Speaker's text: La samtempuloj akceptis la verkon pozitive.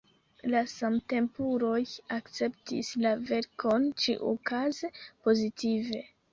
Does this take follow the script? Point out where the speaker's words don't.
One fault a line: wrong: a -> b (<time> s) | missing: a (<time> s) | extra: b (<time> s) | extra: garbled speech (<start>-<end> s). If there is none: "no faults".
extra: ĉiukaze (4.1 s)